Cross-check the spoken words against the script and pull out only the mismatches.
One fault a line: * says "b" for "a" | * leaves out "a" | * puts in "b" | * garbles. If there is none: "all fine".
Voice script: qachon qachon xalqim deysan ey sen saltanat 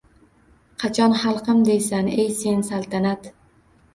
* leaves out "qachon"